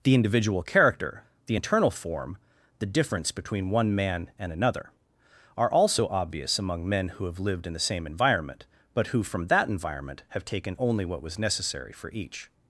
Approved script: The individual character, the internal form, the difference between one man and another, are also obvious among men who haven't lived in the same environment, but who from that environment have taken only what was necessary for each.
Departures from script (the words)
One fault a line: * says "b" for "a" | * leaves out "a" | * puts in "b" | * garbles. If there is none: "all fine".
* says "have" for "haven't"